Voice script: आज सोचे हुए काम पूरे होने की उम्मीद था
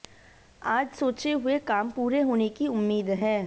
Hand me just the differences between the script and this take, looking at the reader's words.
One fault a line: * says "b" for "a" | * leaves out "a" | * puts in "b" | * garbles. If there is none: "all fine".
* says "है" for "था"